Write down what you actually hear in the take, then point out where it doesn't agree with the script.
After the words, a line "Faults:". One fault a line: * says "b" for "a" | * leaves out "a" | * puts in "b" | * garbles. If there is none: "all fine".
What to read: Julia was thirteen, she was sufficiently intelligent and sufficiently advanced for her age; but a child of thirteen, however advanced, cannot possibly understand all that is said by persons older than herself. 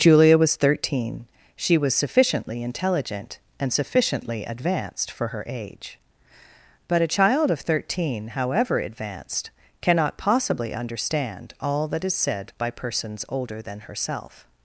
Julia was thirteen, she was sufficiently intelligent and sufficiently advanced for her age; but a child of thirteen, however advanced, cannot possibly understand all that is said by persons older than herself.
Faults:
all fine